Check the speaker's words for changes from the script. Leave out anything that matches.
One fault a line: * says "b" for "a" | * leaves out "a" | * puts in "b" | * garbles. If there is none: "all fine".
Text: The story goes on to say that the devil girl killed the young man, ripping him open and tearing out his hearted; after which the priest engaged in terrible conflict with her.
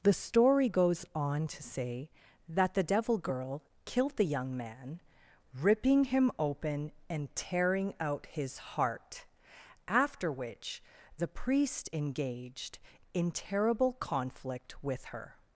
* says "heart" for "hearted"